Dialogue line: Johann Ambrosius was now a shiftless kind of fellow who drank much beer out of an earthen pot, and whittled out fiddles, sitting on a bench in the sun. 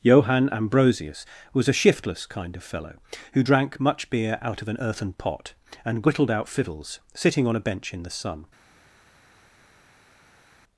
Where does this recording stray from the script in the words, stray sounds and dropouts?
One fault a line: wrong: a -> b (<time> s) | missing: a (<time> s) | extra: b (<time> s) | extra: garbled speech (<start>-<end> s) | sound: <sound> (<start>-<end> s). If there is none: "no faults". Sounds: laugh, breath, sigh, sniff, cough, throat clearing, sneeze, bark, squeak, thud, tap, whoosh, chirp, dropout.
missing: now (1.7 s)